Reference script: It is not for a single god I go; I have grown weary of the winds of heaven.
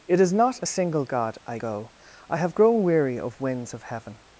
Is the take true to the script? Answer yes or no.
no